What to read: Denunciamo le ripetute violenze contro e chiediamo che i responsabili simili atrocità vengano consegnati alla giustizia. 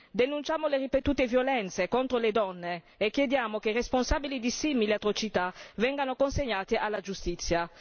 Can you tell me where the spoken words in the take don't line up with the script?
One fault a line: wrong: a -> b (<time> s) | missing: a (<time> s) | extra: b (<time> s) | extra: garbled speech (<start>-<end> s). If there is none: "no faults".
extra: le donne (2.2 s)
extra: di (4.4 s)